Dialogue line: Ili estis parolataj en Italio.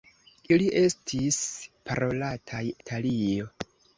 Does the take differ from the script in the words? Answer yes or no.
yes